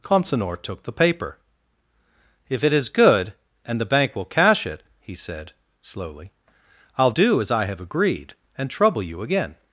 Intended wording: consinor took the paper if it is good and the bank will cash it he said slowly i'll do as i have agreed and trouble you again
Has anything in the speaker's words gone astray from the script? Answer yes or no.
no